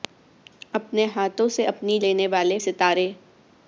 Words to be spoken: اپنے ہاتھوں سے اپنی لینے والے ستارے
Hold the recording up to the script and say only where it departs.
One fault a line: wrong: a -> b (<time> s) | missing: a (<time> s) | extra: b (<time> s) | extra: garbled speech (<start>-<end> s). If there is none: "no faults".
no faults